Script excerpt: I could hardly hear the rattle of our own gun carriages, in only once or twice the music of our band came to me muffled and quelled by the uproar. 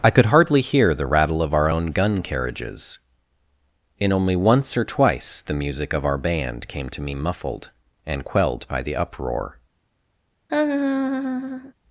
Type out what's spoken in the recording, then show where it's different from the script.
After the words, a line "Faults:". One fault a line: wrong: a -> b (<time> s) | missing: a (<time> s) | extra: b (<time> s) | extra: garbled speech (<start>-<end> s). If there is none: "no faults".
I could hardly hear the rattle of our own gun carriages, in only once or twice the music of our band came to me muffled and quelled by the uproar.
Faults:
no faults